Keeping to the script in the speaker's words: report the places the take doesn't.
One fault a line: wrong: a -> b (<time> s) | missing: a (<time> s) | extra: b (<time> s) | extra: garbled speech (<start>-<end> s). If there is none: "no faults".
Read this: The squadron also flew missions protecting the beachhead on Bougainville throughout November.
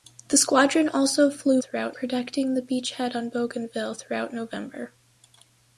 wrong: missions -> throughout (1.6 s)